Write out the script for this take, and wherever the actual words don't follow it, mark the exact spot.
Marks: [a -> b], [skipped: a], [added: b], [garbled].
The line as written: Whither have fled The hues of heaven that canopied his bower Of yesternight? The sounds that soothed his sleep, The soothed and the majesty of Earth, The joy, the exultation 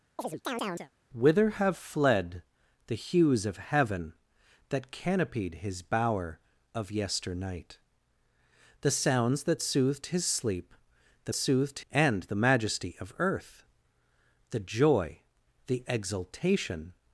Whither have fled The hues of heaven that canopied his bower Of yesternight? The sounds that soothed his sleep, The soothed and the majesty of Earth, The joy, the exultation